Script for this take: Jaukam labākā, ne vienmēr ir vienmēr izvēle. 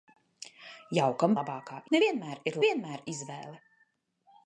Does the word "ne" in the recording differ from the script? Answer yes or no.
no